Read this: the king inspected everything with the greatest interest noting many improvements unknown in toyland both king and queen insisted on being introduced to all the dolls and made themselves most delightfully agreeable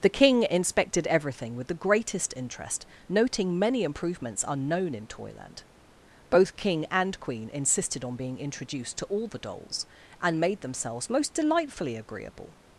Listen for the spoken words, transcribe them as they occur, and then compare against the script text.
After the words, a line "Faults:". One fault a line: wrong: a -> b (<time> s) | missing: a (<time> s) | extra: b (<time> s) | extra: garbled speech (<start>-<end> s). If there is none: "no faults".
the king inspected everything with the greatest interest noting many improvements unknown in toyland both king and queen insisted on being introduced to all the dolls and made themselves most delightfully agreeable
Faults:
no faults